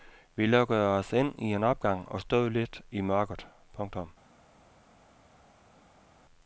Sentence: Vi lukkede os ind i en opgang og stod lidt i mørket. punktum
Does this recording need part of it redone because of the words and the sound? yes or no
no